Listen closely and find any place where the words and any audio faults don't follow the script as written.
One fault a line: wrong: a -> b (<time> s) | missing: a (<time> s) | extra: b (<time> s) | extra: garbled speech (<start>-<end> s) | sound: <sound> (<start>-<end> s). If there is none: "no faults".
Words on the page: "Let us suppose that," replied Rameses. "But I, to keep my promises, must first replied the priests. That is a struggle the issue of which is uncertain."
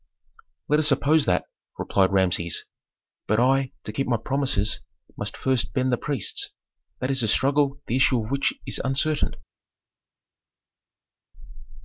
wrong: replied -> bend (5.7 s)